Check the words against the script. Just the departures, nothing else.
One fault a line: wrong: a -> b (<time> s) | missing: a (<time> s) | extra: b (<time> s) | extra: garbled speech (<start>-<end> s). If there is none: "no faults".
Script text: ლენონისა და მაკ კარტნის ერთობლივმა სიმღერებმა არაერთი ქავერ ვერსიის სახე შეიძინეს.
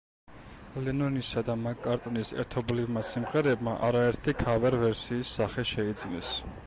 no faults